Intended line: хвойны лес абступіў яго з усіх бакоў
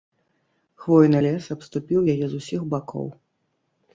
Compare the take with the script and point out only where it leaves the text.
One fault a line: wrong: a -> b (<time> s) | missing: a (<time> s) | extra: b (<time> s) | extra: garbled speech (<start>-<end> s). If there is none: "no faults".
wrong: яго -> яе (2.1 s)